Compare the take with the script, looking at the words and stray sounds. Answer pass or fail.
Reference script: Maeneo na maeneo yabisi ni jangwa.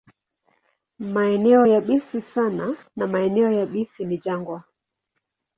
fail